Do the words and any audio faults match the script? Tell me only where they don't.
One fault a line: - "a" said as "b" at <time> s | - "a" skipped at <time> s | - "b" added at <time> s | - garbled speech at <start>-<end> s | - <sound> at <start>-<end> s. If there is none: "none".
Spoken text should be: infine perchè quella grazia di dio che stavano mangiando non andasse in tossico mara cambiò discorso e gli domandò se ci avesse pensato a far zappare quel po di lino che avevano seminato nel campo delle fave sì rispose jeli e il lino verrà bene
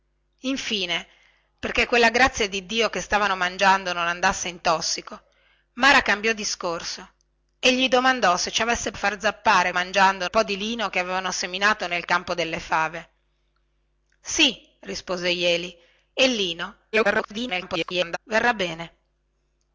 - "pensato" skipped at 8.9 s
- "quel" said as "mangiando" at 9.7 s
- garbled speech at 16.9-18.2 s